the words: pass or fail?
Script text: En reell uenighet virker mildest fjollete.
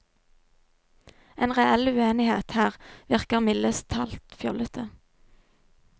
fail